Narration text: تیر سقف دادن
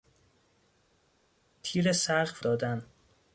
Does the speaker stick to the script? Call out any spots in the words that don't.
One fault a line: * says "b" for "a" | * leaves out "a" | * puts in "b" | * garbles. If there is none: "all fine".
all fine